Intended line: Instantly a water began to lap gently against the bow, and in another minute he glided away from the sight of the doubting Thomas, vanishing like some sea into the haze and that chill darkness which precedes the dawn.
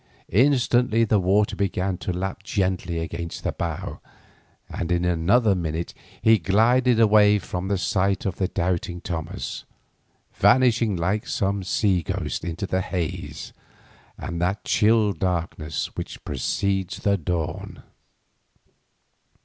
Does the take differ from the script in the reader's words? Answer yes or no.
yes